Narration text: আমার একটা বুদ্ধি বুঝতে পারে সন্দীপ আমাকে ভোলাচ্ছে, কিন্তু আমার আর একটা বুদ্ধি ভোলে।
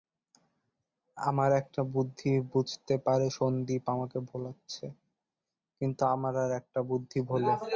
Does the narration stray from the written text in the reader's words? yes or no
no